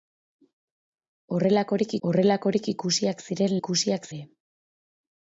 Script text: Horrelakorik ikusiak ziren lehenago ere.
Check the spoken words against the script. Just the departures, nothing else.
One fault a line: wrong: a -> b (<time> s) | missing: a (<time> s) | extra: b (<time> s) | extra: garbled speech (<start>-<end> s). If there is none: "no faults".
extra: horrelakorik (2.1 s)
wrong: lehenago -> ikusiak (3.6 s)